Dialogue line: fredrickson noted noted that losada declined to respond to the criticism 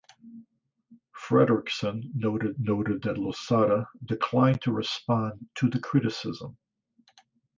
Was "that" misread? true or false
false